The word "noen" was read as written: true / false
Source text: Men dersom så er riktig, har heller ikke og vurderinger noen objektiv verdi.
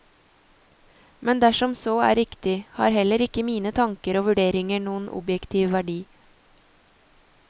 true